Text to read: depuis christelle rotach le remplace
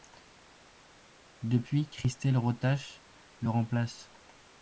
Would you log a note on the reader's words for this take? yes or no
no